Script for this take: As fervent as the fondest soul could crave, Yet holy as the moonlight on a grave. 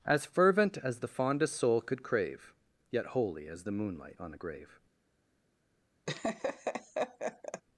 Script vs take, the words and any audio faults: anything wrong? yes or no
yes